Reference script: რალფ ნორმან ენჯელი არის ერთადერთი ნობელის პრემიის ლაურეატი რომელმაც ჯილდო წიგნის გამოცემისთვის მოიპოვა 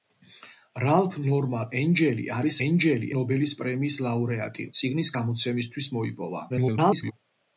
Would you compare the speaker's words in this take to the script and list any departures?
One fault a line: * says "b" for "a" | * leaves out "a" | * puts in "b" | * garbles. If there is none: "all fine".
* says "ენჯელი" for "ერთადერთი"
* leaves out "რომელმაც ჯილდო"
* garbles